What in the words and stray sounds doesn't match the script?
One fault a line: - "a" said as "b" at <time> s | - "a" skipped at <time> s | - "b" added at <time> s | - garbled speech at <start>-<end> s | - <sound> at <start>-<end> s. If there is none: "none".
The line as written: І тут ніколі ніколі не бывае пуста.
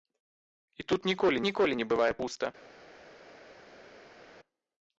none